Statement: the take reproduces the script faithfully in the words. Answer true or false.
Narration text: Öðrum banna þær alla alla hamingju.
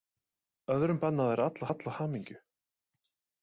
true